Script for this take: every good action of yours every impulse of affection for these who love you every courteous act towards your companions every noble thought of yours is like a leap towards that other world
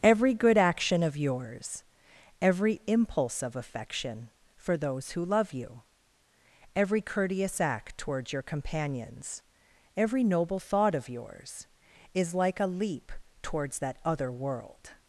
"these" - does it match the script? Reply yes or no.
no